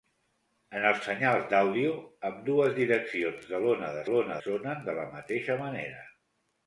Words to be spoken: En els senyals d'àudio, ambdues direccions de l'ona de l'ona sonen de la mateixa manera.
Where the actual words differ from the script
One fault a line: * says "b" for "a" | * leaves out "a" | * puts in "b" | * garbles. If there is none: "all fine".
all fine